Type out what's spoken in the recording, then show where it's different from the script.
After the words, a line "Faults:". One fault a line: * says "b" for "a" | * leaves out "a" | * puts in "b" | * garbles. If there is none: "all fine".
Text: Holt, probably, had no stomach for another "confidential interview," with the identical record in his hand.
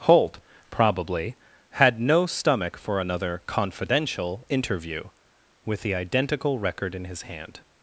Holt, probably, had no stomach for another "confidential interview," with the identical record in his hand.
Faults:
all fine